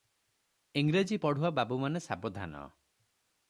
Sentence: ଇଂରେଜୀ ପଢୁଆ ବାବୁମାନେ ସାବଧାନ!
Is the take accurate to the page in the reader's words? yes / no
yes